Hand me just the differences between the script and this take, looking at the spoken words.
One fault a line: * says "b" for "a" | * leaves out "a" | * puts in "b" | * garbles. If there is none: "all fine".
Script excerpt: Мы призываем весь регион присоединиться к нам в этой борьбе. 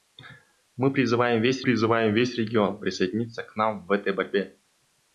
* puts in "призываем весь"